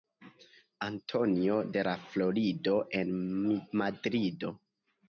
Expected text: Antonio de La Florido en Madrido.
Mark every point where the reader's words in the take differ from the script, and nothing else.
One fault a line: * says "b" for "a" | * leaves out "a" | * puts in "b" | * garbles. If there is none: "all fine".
all fine